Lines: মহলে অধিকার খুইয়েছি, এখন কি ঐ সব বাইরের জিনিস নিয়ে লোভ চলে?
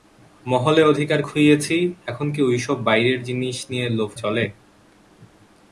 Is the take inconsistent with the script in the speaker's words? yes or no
no